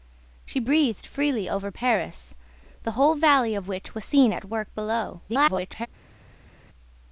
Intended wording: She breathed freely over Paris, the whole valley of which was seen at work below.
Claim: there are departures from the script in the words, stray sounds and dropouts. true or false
true